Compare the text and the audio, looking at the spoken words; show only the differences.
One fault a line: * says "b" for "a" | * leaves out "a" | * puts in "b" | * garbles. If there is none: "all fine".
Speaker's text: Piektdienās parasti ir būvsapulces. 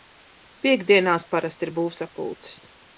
all fine